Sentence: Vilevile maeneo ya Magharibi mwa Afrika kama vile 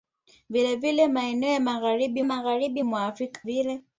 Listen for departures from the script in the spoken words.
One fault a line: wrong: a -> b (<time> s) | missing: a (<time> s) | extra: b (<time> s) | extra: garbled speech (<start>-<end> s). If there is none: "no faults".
extra: Magharibi (2.2 s)
missing: kama (3.4 s)